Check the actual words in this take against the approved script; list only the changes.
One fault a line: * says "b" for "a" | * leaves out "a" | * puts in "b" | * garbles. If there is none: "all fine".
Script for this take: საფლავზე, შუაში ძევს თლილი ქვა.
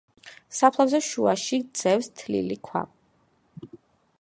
all fine